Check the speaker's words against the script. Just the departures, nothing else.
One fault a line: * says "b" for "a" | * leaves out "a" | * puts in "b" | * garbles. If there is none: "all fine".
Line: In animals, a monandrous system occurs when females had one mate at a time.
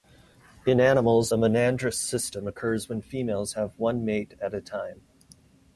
* says "have" for "had"